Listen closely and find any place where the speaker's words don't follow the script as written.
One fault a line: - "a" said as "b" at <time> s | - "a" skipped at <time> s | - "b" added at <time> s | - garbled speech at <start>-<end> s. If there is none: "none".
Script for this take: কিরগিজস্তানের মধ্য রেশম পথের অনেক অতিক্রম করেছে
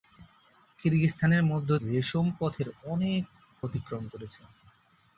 none